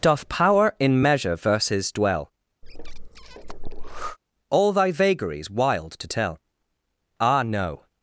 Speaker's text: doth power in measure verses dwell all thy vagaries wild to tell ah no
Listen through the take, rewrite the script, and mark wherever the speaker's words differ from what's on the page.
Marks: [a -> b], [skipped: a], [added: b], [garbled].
doth power in measure verses dwell all thy vagaries wild to tell ah no